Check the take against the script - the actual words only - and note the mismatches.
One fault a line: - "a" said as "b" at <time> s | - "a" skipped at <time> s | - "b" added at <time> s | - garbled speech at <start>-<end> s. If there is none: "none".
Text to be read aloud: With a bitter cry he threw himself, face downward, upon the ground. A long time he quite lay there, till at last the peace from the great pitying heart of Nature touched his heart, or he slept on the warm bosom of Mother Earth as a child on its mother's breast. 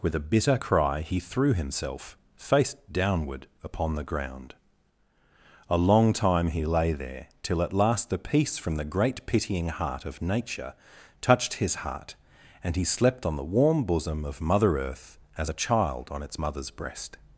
- "quite" skipped at 6.6 s
- "or" said as "and" at 12.6 s